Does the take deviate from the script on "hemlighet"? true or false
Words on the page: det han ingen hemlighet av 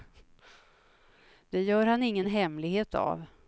false